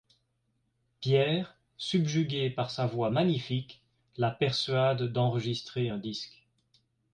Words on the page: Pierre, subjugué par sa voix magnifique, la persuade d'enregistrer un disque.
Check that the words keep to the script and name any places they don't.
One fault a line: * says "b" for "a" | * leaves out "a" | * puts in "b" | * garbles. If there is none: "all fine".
all fine